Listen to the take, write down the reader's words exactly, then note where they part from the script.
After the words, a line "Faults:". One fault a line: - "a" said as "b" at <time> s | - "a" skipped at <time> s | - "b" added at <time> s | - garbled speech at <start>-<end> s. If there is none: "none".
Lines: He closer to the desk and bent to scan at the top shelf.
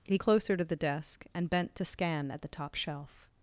He closer to the desk and bent to scan at the top shelf.
Faults:
none